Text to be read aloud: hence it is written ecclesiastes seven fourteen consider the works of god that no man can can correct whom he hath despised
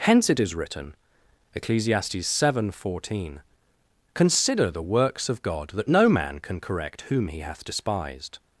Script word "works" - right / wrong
right